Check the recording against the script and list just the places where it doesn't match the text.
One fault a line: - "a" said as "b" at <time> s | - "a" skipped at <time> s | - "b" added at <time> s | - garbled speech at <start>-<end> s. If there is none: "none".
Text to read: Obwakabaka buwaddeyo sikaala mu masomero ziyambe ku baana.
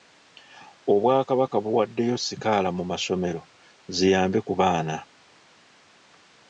none